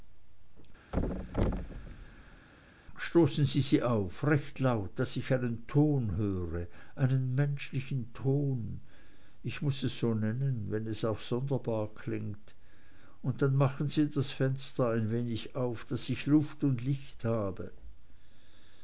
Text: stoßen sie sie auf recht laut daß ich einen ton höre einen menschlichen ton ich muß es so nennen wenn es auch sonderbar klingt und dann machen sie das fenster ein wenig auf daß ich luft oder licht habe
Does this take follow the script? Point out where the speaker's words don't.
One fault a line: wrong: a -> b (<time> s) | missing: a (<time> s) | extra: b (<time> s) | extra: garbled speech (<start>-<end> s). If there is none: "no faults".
wrong: oder -> und (16.6 s)